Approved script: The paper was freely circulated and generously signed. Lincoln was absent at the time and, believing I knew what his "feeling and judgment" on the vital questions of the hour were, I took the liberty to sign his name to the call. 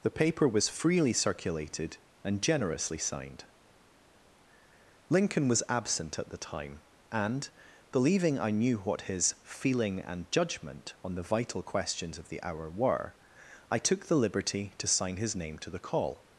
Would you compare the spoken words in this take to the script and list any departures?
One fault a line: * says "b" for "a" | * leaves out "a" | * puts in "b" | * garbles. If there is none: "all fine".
all fine